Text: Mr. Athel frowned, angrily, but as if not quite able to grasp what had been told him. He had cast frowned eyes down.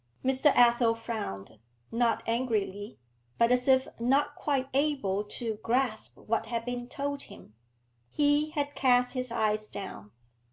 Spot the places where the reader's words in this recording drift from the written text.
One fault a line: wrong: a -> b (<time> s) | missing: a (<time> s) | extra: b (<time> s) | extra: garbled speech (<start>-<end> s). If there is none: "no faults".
extra: not (1.9 s)
wrong: frowned -> his (9.1 s)